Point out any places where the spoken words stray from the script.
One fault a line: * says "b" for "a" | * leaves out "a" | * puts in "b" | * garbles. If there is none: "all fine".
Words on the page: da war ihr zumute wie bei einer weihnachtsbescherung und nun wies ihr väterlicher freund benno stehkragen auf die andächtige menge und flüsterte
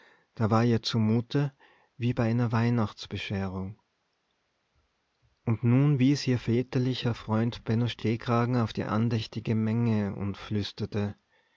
all fine